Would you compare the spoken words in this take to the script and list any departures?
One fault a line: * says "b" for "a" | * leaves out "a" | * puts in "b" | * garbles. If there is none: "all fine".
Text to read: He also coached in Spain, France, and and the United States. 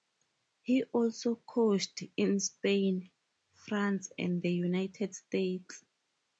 * leaves out "and"